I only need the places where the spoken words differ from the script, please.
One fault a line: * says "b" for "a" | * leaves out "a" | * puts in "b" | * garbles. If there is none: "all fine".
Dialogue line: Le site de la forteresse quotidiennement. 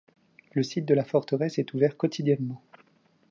* puts in "est ouvert"